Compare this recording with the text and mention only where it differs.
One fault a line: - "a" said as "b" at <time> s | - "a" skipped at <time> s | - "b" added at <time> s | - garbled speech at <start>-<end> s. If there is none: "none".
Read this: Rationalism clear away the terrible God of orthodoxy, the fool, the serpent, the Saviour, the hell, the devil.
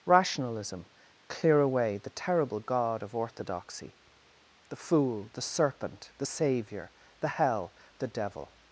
none